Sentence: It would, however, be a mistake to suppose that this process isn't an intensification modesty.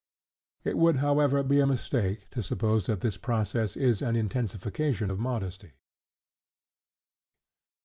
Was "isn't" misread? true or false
true